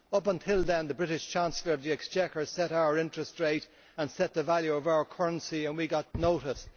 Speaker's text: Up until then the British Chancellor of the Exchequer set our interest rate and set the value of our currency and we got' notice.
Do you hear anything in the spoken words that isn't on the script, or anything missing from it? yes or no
no